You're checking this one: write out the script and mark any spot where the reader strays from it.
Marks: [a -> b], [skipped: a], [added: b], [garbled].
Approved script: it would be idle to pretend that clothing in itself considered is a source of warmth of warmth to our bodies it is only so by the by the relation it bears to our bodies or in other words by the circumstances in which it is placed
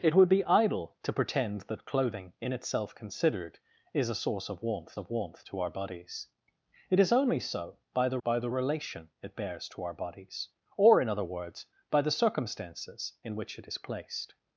it would be idle to pretend that clothing in itself considered is a source of warmth of warmth to our bodies it is only so by the by the relation it bears to our bodies or in other words by the circumstances in which it is placed